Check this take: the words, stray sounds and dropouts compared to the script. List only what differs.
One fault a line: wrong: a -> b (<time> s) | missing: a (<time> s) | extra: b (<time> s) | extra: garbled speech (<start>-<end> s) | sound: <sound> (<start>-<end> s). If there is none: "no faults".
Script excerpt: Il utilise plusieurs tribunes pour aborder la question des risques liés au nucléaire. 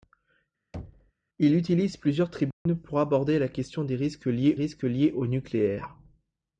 sound: thud (0.7-1.1 s)
sound: dropout (2.5-2.7 s)
extra: risques liés (4.5 s)